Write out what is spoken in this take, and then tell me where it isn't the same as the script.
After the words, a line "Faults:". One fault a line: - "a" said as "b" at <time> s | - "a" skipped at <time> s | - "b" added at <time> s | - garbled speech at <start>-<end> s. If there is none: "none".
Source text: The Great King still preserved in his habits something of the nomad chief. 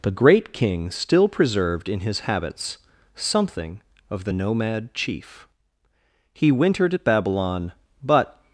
The Great King still preserved in his habits something of the nomad chief. He wintered at Babylon, but
Faults:
- "He wintered at Babylon but" added at 6.3 s